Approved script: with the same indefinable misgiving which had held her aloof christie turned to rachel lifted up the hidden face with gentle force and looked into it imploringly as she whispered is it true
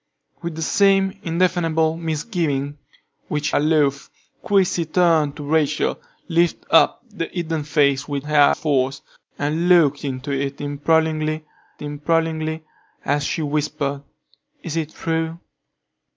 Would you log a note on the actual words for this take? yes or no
yes